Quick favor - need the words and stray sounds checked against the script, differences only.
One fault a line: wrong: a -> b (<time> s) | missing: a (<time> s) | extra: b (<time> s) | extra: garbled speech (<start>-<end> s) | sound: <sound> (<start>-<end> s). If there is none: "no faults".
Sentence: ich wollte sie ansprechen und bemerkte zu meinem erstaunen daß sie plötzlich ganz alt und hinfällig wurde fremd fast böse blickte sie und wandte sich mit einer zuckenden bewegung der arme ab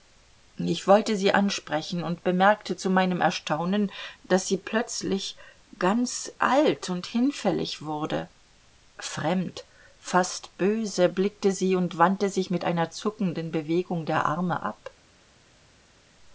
no faults